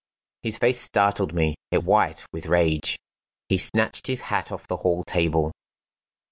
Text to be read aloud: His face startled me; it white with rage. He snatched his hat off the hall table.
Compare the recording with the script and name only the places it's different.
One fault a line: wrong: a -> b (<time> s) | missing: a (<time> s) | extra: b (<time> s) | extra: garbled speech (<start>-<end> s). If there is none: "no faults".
no faults